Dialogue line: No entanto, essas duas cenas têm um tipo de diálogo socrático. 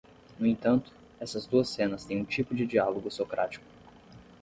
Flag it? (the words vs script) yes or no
no